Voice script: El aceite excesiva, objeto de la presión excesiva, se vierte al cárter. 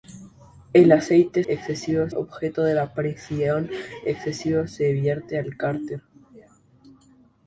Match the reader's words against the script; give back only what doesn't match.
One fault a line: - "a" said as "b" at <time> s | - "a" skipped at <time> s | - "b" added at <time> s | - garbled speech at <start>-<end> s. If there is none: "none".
none